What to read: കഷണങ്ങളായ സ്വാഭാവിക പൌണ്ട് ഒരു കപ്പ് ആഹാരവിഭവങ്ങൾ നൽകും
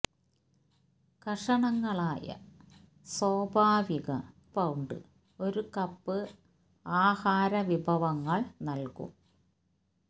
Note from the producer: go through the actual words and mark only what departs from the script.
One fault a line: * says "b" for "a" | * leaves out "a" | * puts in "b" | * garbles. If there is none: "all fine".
all fine